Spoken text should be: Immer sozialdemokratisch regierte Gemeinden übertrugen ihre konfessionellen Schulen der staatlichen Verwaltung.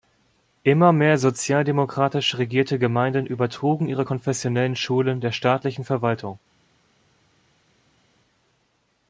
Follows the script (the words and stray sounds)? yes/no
no